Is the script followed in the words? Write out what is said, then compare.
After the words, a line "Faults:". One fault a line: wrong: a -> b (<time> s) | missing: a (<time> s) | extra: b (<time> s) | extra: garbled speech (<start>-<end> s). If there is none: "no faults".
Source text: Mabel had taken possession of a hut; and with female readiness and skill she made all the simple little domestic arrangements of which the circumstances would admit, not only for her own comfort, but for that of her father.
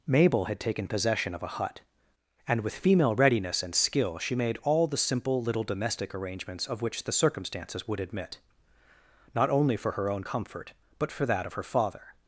Mabel had taken possession of a hut; and with female readiness and skill she made all the simple little domestic arrangements of which the circumstances would admit, not only for her own comfort, but for that of her father.
Faults:
no faults